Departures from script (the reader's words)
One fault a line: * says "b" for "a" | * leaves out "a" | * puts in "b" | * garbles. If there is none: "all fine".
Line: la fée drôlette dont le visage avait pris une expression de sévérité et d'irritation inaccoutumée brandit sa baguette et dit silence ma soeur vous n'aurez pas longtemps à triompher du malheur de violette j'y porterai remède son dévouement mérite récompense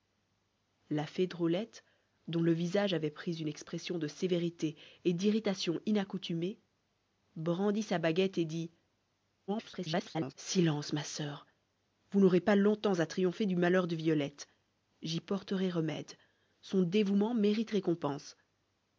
* garbles